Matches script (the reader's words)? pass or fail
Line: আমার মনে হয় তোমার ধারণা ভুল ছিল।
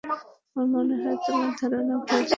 pass